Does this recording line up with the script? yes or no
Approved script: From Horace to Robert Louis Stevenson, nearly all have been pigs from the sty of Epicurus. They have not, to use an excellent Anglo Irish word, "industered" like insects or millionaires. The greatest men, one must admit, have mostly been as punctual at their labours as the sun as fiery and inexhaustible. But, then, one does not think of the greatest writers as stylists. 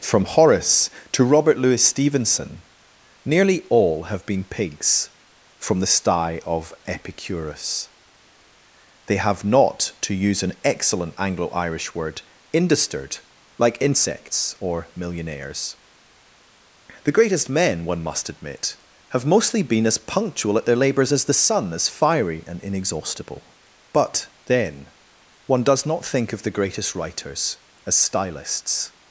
yes